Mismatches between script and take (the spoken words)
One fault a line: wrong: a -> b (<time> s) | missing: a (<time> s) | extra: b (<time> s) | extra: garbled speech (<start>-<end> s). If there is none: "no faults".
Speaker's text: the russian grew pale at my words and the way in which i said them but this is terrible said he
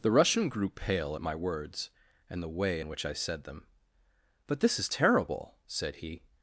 no faults